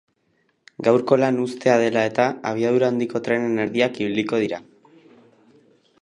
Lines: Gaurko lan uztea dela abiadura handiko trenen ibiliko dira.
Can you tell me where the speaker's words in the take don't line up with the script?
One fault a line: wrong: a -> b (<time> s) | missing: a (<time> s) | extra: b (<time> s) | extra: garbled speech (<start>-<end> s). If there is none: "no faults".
extra: eta (2.1 s)
extra: erdiak (3.6 s)